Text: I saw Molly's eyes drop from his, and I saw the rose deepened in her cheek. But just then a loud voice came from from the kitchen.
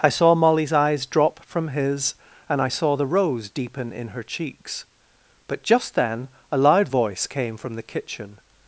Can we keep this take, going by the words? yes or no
no